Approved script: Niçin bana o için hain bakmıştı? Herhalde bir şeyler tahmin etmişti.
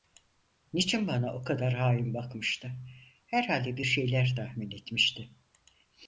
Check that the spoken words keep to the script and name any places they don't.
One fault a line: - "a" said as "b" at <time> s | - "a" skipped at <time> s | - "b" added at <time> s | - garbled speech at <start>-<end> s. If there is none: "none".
- "için" said as "kadar" at 1.4 s